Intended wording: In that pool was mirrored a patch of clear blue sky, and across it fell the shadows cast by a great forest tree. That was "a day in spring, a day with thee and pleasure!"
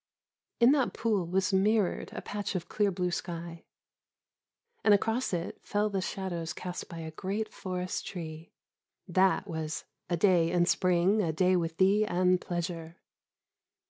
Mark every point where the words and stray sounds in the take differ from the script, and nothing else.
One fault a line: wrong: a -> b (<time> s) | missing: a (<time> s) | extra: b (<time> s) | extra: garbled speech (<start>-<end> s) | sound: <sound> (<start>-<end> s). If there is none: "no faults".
no faults